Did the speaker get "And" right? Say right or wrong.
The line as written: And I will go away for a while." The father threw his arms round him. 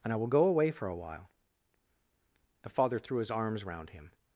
right